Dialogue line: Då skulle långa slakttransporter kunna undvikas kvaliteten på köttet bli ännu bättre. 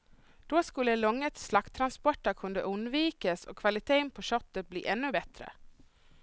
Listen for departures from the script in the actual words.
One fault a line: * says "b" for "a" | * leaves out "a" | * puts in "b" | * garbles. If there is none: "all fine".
* puts in "och"